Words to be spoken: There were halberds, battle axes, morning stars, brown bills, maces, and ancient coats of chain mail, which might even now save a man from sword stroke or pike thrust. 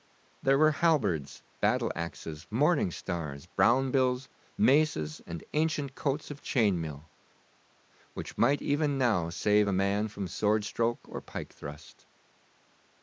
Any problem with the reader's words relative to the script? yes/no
no